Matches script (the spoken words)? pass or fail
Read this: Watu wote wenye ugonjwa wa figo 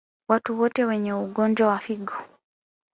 pass